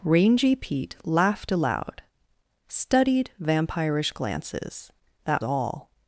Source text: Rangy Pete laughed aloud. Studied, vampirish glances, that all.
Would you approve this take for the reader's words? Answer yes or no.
yes